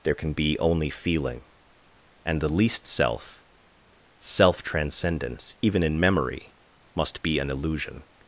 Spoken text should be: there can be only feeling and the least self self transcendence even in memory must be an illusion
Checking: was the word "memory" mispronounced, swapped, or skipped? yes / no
no